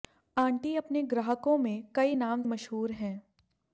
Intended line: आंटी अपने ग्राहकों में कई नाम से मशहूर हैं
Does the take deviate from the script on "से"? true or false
true